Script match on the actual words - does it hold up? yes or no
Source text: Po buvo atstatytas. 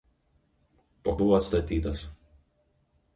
yes